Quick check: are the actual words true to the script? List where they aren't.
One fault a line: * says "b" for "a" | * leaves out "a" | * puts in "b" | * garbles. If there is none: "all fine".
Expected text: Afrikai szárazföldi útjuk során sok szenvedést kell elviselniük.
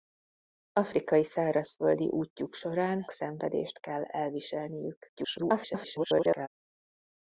* leaves out "sok"
* garbles